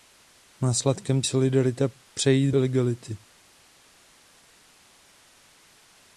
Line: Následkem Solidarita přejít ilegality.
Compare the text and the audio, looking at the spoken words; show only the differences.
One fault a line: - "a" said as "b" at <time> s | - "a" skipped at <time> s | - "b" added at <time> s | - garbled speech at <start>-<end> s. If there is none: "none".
none